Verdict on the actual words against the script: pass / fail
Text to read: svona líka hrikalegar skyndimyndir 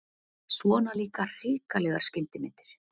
pass